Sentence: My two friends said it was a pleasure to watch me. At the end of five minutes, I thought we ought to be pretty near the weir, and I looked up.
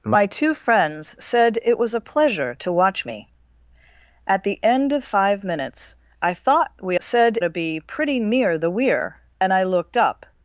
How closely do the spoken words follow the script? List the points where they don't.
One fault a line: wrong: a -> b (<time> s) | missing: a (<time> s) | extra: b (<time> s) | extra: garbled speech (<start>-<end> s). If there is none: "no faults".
wrong: ought -> said (7.0 s)